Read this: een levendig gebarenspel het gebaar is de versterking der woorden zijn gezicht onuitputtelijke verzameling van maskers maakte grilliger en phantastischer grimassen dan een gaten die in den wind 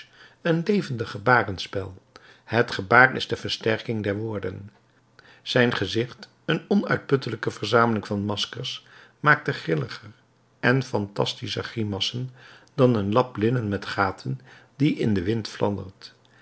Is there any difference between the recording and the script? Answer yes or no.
yes